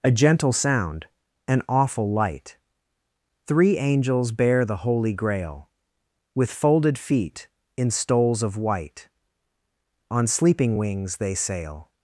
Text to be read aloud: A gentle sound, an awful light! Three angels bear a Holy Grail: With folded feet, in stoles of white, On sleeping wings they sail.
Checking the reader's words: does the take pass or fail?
fail